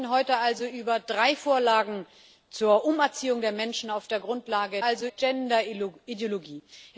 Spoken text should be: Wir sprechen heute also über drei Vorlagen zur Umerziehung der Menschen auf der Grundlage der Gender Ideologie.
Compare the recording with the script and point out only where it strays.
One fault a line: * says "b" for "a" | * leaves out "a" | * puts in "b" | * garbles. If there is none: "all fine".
* says "also" for "der"